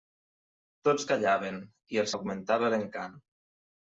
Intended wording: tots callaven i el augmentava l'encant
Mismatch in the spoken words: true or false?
false